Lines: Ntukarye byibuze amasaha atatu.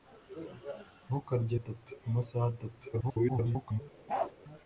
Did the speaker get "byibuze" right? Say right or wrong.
wrong